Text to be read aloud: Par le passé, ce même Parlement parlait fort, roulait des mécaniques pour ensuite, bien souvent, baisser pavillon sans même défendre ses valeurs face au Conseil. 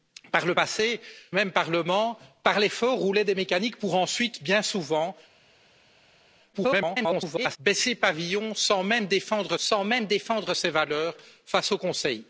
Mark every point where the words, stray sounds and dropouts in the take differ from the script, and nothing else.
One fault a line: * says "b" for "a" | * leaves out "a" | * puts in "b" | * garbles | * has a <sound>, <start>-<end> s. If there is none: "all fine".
* leaves out "ce"
* garbles
* puts in "sans même défendre"